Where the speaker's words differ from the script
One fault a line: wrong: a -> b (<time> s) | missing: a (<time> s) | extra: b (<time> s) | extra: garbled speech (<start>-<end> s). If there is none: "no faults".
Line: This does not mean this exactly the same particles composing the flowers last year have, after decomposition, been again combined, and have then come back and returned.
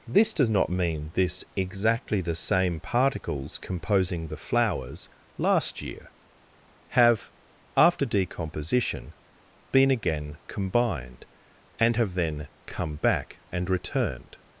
no faults